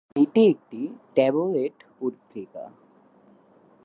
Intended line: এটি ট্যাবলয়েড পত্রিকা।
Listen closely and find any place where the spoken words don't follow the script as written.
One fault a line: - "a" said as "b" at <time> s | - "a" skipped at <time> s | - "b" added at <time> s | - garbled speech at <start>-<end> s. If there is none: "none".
- "একটি" added at 0.5 s